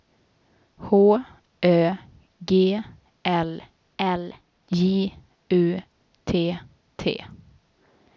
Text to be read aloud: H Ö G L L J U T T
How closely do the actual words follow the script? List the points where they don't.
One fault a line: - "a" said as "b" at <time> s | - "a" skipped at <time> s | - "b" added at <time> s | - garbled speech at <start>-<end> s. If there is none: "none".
none